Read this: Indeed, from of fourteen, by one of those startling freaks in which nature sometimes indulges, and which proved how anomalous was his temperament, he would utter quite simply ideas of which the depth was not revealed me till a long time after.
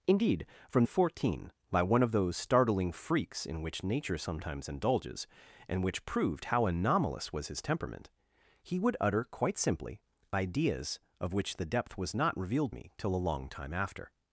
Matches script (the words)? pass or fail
pass